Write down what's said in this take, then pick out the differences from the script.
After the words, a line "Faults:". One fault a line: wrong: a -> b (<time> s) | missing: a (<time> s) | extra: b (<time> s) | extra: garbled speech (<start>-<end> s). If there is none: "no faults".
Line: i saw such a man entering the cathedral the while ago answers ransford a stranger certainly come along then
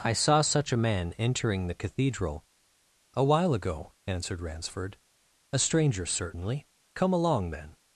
i saw such a man entering the cathedral a while ago answered ransford a stranger certainly come along then
Faults:
wrong: the -> a (3.1 s)
wrong: answers -> answered (4.1 s)